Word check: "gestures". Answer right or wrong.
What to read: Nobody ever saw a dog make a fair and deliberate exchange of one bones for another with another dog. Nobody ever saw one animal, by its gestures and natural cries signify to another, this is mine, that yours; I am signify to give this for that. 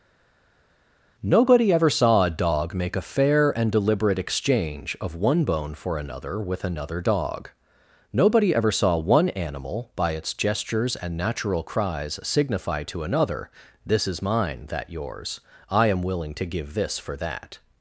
right